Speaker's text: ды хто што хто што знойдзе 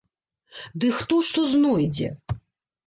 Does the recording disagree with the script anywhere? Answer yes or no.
yes